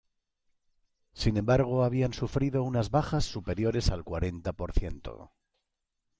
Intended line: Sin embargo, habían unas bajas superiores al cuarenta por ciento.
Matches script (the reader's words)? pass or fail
fail